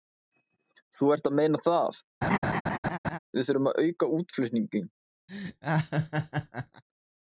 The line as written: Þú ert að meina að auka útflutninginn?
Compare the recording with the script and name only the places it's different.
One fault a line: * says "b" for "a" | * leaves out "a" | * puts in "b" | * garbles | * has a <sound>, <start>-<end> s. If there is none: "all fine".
* puts in "það við þurfum"
* has a laugh, 2.2-3.2 s
* has a laugh, 5.3-6.8 s